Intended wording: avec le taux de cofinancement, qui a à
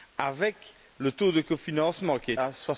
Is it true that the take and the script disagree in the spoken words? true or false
false